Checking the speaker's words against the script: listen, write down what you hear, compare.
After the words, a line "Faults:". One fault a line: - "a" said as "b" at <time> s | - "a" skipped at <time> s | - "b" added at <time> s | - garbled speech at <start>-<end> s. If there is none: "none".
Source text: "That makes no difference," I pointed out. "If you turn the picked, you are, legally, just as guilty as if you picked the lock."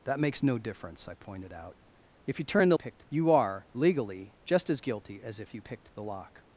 "That makes no difference," I pointed out. "If you turn the picked, you are, legally, just as guilty as if you picked the lock."
Faults:
none